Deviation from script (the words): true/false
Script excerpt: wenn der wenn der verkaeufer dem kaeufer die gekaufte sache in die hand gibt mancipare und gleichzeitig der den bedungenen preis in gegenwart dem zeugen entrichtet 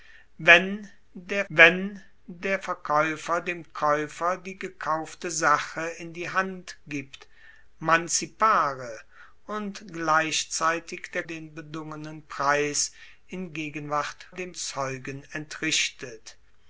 false